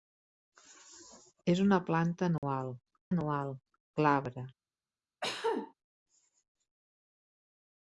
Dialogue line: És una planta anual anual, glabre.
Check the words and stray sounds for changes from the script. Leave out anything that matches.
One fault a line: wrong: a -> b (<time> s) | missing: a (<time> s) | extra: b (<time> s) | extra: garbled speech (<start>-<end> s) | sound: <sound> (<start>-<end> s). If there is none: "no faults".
sound: dropout (2.4-2.4 s)
sound: cough (5.2-5.7 s)